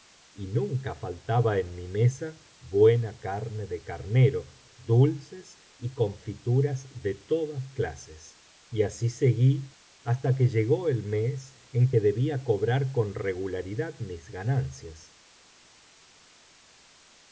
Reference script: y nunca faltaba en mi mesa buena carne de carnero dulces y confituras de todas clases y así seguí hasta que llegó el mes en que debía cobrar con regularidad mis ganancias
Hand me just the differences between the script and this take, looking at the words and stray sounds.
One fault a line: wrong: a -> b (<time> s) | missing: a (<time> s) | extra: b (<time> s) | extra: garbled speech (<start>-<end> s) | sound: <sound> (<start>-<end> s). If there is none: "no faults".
no faults